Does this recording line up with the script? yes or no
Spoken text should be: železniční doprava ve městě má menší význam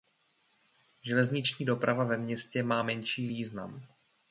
yes